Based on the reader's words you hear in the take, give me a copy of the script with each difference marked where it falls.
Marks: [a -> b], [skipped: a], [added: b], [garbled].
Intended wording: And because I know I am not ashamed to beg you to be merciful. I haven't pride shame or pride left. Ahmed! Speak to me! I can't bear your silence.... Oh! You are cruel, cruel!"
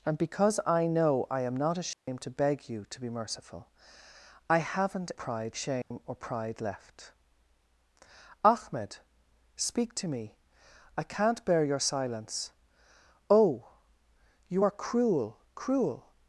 And because I know I am not ashamed to beg you to be merciful. I haven't pride shame or pride left. Ahmed! Speak to me! I can't bear your silence.... Oh! You are cruel, cruel!"